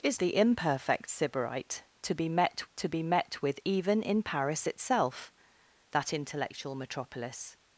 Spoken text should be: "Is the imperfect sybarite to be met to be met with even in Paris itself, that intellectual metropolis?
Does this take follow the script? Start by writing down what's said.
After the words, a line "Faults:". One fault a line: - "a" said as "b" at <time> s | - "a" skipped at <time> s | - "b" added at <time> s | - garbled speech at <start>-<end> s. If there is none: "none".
"Is the imperfect sybarite to be met to be met with even in Paris itself, that intellectual metropolis?
Faults:
none